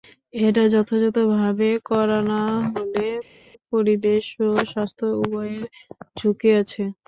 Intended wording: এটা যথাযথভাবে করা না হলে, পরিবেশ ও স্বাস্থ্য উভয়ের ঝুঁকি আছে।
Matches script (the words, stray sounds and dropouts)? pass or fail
pass